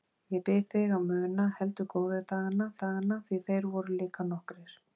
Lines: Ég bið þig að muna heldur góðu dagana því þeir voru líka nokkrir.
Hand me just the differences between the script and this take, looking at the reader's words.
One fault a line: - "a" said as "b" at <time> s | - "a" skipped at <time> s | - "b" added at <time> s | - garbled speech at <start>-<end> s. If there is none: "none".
- "dagana" added at 2.8 s